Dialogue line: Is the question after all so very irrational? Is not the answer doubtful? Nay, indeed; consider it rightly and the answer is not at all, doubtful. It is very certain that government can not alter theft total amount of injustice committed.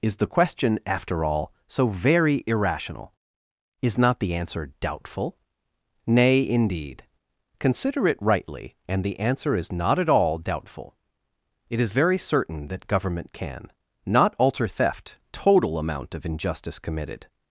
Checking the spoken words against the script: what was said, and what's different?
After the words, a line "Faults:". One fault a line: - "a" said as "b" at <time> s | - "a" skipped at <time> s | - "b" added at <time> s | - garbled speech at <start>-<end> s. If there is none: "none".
Is the question after all so very irrational? Is not the answer doubtful? Nay, indeed; consider it rightly and the answer is not at all, doubtful. It is very certain that government can not alter theft total amount of injustice committed.
Faults:
none